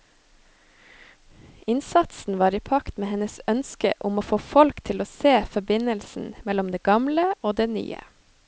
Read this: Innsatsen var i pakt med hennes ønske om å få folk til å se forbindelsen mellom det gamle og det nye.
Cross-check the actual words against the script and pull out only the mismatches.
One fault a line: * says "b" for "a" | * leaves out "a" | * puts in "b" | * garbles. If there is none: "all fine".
all fine